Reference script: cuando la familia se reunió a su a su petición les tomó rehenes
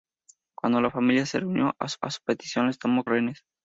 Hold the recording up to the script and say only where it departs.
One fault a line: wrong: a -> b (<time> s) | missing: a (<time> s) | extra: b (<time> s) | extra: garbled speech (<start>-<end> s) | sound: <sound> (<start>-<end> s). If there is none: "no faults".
no faults